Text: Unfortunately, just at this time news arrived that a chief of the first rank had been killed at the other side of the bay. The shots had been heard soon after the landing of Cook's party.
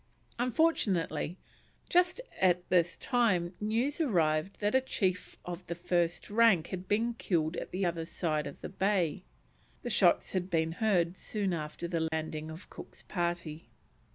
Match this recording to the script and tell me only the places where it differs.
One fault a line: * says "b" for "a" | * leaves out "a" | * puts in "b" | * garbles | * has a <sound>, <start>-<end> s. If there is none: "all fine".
* has a dropout, 12.1-12.1 s